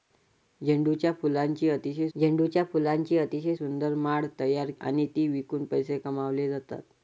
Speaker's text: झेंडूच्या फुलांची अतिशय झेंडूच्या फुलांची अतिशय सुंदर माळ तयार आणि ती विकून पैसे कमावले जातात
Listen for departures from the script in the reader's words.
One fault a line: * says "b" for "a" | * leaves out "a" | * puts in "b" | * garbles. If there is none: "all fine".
all fine